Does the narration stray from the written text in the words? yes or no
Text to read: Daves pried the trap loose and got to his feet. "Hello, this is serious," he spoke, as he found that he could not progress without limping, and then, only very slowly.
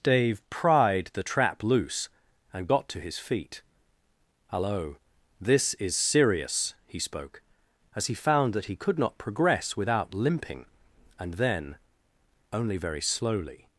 yes